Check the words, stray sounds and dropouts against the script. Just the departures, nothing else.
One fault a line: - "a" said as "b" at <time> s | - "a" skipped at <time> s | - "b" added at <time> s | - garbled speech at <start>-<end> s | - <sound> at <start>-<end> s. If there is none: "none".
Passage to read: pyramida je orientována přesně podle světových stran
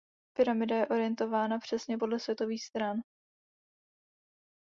none